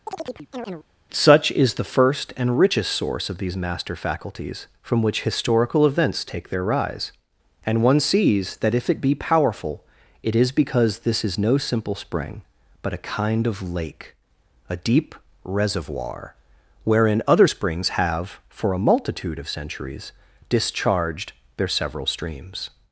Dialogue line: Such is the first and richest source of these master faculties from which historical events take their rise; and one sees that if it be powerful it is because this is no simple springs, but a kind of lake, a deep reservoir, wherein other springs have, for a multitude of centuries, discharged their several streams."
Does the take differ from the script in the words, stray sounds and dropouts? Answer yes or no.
yes